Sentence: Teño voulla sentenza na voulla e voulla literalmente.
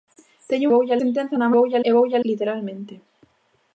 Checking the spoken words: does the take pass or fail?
pass